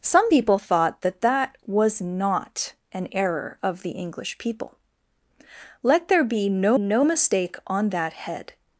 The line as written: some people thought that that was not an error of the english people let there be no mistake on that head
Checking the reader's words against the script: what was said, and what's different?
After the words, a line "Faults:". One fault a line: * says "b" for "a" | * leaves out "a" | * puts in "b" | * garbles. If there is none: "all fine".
some people thought that that was not an error of the english people let there be no no mistake on that head
Faults:
* puts in "no"